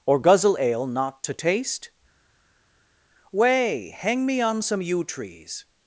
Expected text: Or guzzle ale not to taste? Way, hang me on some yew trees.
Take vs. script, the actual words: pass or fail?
pass